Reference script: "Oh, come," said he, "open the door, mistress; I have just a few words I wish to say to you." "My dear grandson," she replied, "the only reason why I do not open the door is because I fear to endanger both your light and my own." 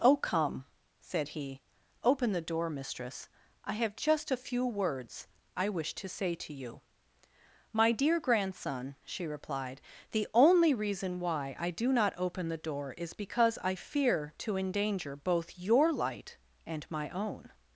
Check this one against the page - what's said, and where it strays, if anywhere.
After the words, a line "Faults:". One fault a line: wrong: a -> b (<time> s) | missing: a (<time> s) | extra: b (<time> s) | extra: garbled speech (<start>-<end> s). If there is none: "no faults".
"Oh, come," said he, "open the door, mistress; I have just a few words I wish to say to you." "My dear grandson," she replied, "the only reason why I do not open the door is because I fear to endanger both your light and my own."
Faults:
no faults